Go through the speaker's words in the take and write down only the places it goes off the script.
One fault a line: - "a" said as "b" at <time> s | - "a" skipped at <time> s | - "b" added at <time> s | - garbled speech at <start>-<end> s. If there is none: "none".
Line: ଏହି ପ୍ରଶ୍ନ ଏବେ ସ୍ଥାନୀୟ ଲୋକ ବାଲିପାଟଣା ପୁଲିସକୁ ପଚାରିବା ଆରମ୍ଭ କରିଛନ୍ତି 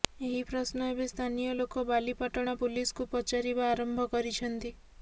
none